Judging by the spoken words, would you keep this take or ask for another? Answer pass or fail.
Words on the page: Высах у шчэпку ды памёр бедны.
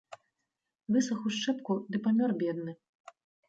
pass